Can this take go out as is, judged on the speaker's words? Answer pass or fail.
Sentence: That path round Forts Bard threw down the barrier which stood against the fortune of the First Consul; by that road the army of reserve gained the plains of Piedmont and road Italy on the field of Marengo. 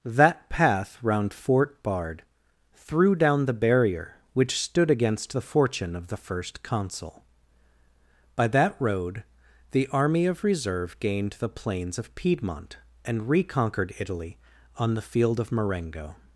fail